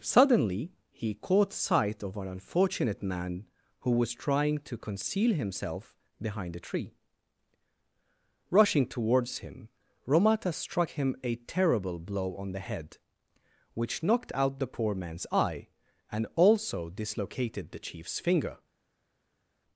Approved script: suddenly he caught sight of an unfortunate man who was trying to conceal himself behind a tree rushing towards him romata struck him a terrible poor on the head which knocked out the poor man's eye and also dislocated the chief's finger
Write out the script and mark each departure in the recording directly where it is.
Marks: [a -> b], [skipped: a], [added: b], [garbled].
suddenly he caught sight of an unfortunate man who was trying to conceal himself behind a tree rushing towards him romata struck him a terrible [poor -> blow] on the head which knocked out the poor man's eye and also dislocated the chief's finger